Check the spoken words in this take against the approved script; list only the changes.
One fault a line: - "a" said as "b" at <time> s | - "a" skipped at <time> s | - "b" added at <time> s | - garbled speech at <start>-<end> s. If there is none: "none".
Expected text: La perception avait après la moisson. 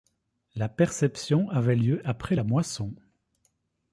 - "lieu" added at 1.8 s